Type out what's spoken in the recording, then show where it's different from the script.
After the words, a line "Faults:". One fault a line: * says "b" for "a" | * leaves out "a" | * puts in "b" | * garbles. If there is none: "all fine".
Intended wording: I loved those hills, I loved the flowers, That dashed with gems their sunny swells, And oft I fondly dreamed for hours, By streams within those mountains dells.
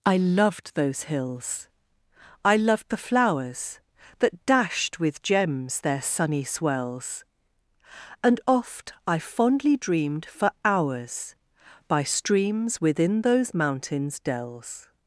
I loved those hills, I loved the flowers, That dashed with gems their sunny swells, And oft I fondly dreamed for hours, By streams within those mountains dells.
Faults:
all fine